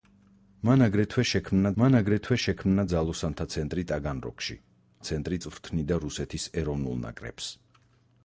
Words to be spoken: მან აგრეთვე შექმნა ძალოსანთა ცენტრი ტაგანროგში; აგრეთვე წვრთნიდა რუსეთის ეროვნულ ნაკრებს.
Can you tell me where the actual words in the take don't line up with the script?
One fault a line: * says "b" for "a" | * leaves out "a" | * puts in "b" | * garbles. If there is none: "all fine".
* puts in "მან აგრეთვე შექმნა"
* says "ცენტრი" for "აგრეთვე"